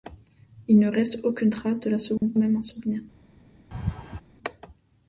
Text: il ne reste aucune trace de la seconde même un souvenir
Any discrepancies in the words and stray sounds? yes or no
yes